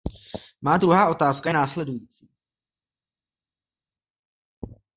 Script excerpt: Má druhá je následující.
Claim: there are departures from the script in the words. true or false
true